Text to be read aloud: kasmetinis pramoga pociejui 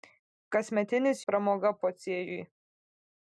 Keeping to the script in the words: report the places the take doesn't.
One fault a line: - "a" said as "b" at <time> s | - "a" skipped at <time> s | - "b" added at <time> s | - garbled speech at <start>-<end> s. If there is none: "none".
none